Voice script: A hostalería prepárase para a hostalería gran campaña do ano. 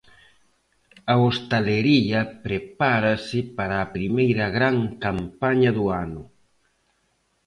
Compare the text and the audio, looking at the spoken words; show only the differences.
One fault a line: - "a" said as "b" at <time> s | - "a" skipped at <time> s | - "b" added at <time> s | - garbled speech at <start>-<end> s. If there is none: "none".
- "hostalería" said as "primeira" at 3.9 s